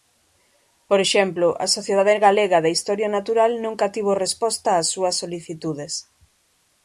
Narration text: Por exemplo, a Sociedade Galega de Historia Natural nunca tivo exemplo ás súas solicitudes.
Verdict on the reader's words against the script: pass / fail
fail